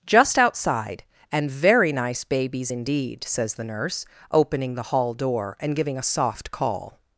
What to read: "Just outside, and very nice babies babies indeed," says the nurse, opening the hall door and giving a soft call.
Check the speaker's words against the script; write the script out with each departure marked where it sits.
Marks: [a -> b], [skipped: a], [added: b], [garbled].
"Just outside, and very nice babies [skipped: babies] indeed," says the nurse, opening the hall door and giving a soft call.